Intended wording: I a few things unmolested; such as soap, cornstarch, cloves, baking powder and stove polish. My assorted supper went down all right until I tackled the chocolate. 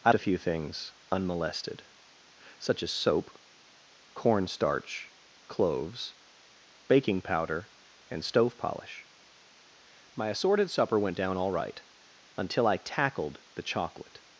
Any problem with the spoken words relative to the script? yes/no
no